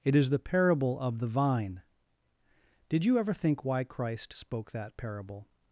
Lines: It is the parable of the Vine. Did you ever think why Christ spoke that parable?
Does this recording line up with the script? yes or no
yes